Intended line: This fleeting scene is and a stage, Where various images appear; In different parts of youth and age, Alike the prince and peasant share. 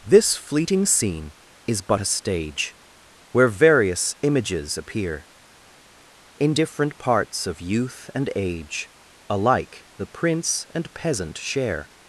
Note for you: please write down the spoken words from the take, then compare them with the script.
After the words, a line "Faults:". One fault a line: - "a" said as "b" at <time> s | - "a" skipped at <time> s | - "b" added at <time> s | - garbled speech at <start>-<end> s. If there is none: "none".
This fleeting scene is but a stage, Where various images appear; In different parts of youth and age, Alike the prince and peasant share.
Faults:
- "and" said as "but" at 1.8 s